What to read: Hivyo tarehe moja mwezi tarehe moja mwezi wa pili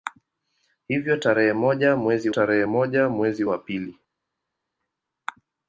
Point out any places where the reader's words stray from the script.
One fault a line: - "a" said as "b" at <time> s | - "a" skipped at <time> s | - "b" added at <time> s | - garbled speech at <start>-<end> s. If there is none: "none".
none